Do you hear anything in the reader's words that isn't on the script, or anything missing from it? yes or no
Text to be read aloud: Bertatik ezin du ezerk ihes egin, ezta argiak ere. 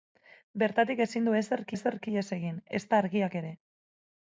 yes